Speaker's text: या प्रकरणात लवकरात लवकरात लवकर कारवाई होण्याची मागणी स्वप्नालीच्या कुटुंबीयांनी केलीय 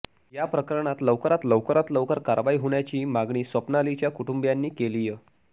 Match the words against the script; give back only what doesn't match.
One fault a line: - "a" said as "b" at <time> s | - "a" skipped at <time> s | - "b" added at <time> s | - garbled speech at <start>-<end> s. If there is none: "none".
none